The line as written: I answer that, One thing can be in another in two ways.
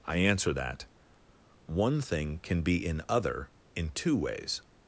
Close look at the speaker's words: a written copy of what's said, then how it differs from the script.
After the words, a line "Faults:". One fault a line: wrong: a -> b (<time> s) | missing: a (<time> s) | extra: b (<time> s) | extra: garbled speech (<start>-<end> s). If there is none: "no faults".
I answer that, One thing can be in other in two ways.
Faults:
wrong: another -> other (3.1 s)